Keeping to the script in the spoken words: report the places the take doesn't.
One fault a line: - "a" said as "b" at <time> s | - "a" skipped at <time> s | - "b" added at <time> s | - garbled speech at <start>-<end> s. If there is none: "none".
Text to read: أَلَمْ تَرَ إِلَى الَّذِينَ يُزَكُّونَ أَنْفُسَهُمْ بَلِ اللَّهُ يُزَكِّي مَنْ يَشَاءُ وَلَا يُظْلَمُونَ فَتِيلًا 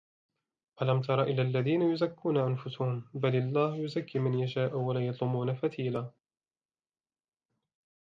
none